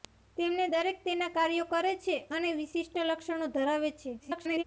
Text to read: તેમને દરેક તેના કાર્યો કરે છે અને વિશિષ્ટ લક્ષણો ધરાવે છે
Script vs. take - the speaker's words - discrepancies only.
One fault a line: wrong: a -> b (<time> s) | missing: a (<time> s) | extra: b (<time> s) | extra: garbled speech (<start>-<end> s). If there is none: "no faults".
extra: garbled speech (4.2-4.6 s)